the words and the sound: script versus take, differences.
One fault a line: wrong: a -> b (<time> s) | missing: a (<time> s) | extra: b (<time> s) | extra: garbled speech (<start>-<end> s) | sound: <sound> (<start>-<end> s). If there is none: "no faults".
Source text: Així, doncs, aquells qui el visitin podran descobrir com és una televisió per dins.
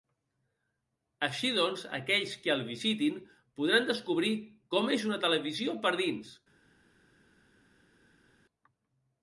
no faults